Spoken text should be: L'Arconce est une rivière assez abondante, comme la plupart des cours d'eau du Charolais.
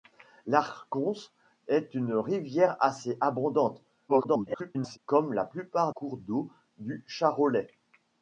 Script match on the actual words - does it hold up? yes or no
no